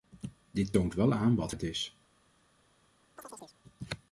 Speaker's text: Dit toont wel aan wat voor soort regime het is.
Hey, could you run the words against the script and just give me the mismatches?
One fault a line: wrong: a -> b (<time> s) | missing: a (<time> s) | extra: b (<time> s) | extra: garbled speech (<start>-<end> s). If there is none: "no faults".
missing: voor soort regime (1.5 s)